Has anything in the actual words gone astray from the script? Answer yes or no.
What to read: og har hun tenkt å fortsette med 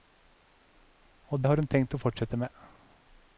no